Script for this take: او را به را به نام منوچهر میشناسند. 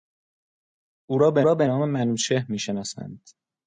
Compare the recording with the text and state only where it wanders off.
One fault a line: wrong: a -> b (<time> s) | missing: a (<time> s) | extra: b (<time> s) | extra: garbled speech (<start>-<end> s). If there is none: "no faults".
no faults